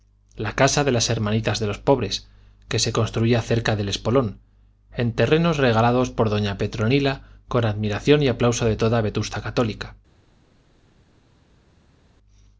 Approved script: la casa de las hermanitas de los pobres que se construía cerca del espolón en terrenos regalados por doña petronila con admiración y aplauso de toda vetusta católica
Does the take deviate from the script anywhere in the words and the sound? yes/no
no